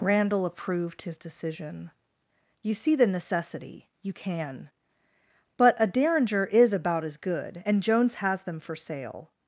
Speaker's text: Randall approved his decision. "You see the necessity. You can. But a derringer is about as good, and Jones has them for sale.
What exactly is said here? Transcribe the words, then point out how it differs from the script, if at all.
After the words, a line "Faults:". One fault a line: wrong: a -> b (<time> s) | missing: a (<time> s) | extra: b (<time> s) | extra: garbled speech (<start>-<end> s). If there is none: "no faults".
Randall approved his decision. "You see the necessity. You can. But a derringer is about as good, and Jones has them for sale.
Faults:
no faults